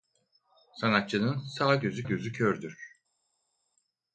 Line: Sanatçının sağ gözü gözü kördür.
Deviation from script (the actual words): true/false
false